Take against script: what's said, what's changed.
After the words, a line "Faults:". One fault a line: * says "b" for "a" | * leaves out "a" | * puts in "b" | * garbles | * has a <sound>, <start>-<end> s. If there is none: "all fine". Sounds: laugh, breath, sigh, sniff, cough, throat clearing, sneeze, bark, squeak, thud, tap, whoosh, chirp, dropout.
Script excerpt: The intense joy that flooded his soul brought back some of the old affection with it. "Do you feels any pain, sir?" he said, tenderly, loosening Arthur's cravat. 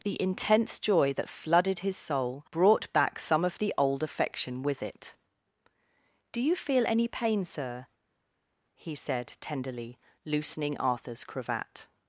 The intense joy that flooded his soul brought back some of the old affection with it. "Do you feel any pain, sir?" he said, tenderly, loosening Arthur's cravat.
Faults:
* says "feel" for "feels"